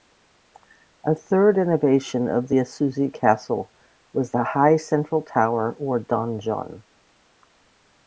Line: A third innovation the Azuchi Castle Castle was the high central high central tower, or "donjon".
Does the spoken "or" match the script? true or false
true